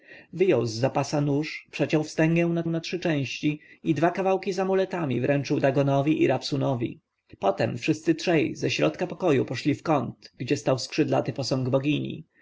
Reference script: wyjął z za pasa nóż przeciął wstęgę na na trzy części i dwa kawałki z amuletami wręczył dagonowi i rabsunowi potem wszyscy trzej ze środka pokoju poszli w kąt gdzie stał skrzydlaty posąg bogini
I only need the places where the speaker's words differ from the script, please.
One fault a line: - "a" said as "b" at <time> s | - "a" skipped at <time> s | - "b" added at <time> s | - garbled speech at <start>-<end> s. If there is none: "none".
none